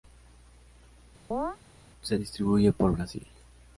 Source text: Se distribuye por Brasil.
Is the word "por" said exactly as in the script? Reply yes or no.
yes